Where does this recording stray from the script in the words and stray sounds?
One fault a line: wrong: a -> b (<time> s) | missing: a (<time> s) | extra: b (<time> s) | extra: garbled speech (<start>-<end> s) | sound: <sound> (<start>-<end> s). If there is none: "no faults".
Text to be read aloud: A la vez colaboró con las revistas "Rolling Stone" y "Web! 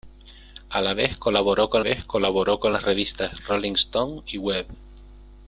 extra: vez colaboró con (1.8 s)